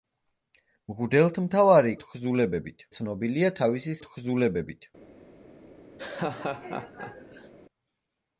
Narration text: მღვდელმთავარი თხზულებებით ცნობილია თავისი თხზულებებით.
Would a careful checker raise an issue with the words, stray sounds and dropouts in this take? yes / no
yes